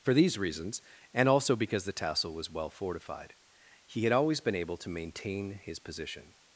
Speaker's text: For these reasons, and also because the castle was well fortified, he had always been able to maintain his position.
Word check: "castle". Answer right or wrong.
wrong